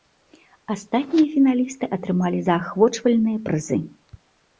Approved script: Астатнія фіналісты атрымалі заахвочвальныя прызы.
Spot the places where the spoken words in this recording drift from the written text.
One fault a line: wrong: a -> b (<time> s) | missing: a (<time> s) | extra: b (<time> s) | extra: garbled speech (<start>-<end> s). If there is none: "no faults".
no faults